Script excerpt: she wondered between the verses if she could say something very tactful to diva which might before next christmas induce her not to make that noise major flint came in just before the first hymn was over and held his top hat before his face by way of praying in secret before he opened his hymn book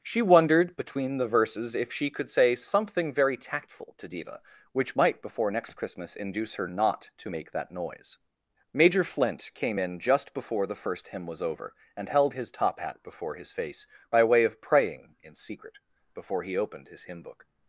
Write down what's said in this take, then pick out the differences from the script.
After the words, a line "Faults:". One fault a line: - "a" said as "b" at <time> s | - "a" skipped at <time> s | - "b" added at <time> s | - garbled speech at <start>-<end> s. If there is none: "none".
she wondered between the verses if she could say something very tactful to diva which might before next christmas induce her not to make that noise major flint came in just before the first hymn was over and held his top hat before his face by way of praying in secret before he opened his hymn book
Faults:
none